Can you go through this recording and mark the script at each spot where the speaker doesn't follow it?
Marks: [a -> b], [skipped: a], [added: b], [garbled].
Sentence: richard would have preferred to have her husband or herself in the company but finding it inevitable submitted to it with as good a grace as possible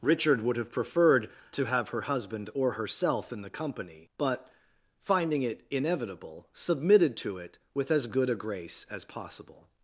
richard would have preferred to have her husband or herself in the company but finding it inevitable submitted to it with as good a grace as possible